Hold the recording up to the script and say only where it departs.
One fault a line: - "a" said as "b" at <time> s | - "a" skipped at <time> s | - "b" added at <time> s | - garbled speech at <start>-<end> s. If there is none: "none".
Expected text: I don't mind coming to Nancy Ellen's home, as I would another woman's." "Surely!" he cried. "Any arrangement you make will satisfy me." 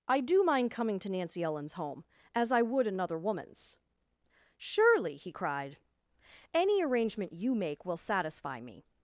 - "don't" said as "do" at 0.2 s